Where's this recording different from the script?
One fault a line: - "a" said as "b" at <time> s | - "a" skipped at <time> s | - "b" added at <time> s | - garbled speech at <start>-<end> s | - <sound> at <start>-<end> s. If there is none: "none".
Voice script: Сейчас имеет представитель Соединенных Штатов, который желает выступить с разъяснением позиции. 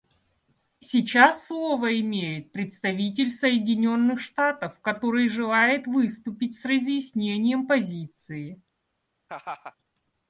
- "слово" added at 1.4 s
- laugh at 9.3-9.8 s